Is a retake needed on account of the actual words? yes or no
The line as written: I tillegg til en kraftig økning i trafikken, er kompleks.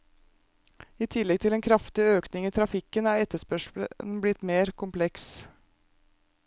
yes